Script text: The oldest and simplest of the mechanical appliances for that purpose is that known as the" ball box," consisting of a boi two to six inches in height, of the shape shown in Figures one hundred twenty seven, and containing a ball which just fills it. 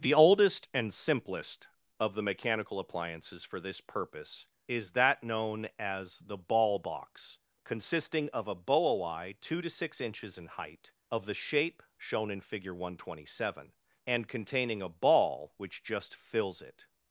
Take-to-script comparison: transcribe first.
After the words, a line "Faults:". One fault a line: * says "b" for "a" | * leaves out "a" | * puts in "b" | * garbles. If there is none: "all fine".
The oldest and simplest of the mechanical appliances for this purpose is that known as the" ball box," consisting of a boi two to six inches in height, of the shape shown in Figure one hundred twenty seven, and containing a ball which just fills it.
Faults:
* says "this" for "that"
* says "Figure" for "Figures"